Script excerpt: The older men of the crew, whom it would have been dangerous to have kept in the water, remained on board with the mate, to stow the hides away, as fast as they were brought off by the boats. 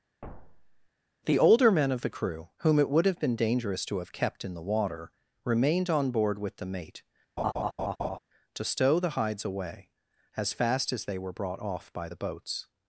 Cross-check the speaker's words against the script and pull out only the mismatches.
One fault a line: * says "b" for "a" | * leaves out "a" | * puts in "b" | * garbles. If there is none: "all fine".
all fine